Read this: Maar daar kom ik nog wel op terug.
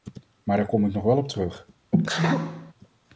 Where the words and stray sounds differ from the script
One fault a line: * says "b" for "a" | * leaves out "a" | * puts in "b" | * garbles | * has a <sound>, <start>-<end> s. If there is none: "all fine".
* has a sneeze, 1.9-2.7 s